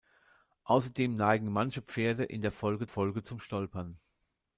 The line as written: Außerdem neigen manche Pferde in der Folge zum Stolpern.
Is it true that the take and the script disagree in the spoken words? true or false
true